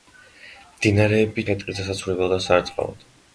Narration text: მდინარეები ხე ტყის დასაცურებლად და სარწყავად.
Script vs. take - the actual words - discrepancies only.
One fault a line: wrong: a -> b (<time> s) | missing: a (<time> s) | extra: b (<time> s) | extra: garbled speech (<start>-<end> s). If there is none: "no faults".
no faults